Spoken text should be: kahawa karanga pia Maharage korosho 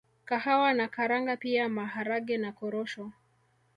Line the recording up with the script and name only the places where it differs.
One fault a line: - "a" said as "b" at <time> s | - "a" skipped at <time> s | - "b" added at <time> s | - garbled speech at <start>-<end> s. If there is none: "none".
- "na" added at 0.7 s
- "na" added at 2.4 s